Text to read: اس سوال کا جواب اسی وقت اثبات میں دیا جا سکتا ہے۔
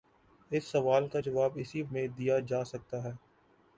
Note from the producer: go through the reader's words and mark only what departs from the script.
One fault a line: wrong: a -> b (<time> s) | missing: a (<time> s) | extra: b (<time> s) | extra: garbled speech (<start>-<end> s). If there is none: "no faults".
missing: وقت اثبات (1.8 s)